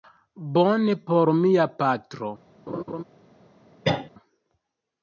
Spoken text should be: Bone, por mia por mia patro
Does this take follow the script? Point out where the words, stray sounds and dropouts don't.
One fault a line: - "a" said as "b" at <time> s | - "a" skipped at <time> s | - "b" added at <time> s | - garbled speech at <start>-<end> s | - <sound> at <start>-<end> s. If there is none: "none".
- "por mia" skipped at 1.6 s
- laugh at 2.7-3.0 s
- cough at 3.8-4.1 s